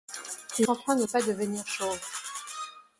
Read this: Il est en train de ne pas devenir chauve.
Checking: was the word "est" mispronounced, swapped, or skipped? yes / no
yes